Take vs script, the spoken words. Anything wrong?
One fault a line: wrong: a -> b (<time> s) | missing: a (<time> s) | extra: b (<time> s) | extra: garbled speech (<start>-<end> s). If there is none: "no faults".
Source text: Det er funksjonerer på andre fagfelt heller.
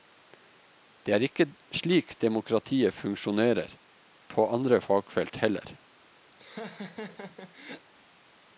extra: ikke slik demokratiet (1.3 s)